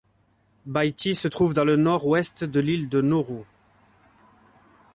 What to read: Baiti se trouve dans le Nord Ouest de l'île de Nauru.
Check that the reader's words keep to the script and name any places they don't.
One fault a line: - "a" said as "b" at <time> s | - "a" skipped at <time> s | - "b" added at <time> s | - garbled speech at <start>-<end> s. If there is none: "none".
none